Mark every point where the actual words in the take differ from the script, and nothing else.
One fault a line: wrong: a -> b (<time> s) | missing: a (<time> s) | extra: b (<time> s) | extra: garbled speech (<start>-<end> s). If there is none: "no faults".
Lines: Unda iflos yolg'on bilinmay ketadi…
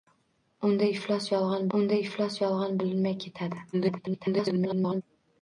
extra: unda iflos yolg'on (1.8 s)
extra: garbled speech (3.7-5.0 s)